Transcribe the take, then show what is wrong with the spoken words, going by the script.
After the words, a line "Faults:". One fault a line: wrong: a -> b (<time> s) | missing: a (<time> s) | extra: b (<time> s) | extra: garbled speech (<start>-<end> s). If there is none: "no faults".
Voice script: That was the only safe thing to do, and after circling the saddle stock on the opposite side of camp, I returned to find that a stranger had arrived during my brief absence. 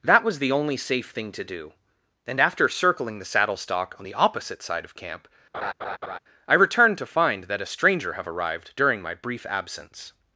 That was the only safe thing to do, and after circling the saddle stock on the opposite side of camp, I returned to find that a stranger have arrived during my brief absence.
Faults:
wrong: had -> have (8.1 s)